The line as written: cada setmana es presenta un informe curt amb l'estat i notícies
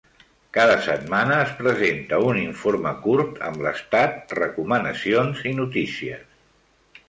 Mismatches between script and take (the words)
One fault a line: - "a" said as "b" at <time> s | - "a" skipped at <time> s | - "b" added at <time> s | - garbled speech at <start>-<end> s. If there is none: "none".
- "recomanacions" added at 4.4 s